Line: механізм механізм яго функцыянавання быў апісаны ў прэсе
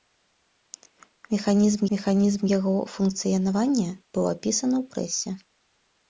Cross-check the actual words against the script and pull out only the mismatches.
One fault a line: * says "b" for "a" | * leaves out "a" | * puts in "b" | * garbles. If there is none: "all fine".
all fine